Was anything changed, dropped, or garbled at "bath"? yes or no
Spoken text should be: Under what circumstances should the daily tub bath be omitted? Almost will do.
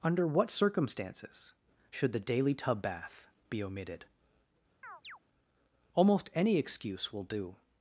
no